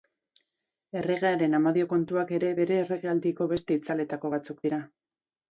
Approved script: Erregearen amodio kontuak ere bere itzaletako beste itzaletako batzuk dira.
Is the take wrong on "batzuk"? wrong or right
right